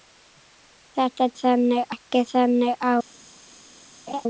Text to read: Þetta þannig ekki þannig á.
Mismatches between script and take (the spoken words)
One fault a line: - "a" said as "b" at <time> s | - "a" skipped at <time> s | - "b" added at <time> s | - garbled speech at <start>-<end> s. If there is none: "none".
none